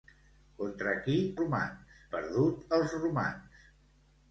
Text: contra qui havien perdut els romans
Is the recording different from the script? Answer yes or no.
yes